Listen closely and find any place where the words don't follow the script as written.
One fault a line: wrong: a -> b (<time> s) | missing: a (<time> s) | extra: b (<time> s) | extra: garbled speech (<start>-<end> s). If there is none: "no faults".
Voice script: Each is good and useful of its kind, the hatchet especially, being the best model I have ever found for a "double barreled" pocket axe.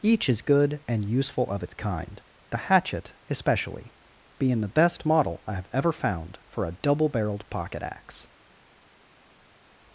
no faults